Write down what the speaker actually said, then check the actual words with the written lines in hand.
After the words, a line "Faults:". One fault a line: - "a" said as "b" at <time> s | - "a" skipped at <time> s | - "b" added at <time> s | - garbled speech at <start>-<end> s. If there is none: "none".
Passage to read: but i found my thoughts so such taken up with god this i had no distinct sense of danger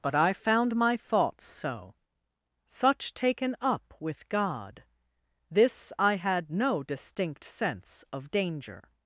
but i found my thoughts so such taken up with god this i had no distinct sense of danger
Faults:
none